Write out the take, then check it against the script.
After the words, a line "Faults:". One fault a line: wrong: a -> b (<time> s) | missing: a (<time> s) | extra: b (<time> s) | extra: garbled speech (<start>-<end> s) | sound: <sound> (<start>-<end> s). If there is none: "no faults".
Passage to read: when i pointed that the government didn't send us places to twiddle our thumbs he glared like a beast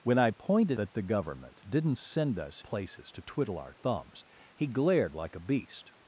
when i pointed that the government didn't send us places to twiddle our thumbs he glared like a beast
Faults:
no faults